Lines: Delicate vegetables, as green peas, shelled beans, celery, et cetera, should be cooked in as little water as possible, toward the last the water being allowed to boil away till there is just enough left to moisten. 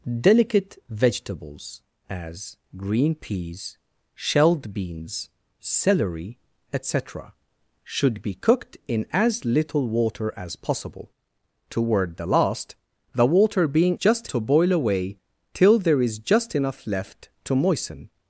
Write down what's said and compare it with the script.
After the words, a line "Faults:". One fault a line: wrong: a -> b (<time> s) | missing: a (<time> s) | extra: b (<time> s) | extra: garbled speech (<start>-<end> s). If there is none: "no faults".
Delicate vegetables, as green peas, shelled beans, celery, et cetera, should be cooked in as little water as possible, toward the last the water being just to boil away till there is just enough left to moisten.
Faults:
wrong: allowed -> just (13.9 s)